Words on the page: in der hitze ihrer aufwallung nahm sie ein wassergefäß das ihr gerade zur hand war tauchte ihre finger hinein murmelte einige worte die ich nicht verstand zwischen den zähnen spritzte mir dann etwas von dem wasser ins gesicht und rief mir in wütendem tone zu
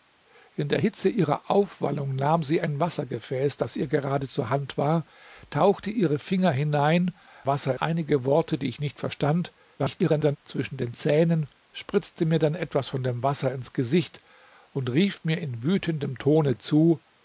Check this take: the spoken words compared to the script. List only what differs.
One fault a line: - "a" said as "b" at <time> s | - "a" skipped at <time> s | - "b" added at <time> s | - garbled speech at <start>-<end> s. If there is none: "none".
- "murmelte" said as "wasser" at 7.4 s
- garbled speech at 9.8-10.4 s